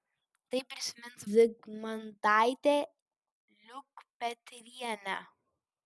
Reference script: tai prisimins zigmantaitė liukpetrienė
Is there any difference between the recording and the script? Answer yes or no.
no